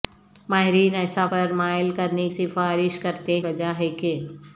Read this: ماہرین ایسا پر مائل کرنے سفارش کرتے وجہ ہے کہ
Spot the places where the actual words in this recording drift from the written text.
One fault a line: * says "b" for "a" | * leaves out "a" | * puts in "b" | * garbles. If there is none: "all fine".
all fine